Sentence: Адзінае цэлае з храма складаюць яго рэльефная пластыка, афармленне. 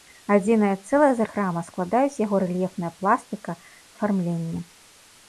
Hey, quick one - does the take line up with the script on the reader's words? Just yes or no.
yes